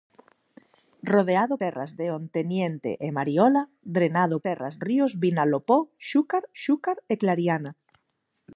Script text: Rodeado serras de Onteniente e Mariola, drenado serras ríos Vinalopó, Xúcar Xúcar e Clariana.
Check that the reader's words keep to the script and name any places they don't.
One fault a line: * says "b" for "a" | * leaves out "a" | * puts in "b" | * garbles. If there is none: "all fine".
all fine